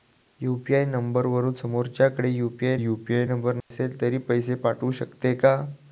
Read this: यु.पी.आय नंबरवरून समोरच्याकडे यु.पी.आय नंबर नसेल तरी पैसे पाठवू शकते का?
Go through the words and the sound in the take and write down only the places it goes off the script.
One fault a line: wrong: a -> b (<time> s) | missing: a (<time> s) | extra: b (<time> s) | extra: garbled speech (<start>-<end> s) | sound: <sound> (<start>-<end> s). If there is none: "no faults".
extra: यु.पी.आय (2.7 s)
sound: dropout (3.6-3.7 s)